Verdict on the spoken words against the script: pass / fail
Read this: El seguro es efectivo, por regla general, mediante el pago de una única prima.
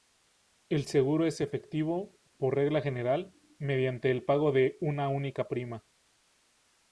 pass